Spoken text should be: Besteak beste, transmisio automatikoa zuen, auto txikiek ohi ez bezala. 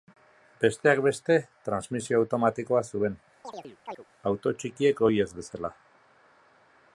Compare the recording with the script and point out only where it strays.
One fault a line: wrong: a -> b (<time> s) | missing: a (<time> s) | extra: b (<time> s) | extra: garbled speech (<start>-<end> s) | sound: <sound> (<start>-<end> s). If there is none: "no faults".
sound: chirp (3.4-4.0 s)